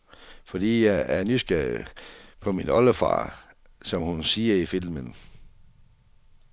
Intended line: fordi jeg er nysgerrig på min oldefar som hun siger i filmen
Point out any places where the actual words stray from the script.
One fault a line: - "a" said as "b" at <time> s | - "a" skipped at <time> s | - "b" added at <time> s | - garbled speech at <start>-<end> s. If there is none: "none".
none